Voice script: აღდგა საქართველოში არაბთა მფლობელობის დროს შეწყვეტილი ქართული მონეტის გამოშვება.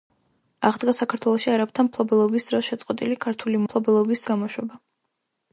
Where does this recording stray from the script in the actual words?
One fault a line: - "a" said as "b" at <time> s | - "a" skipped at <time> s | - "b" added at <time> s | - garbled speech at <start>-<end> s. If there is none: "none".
- "მონეტის" said as "მფლობელობის" at 3.6 s